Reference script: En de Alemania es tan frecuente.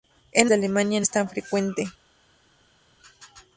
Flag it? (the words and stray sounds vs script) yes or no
no